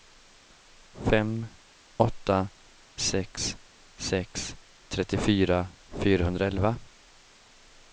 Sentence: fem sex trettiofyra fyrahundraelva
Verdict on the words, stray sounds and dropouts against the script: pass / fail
fail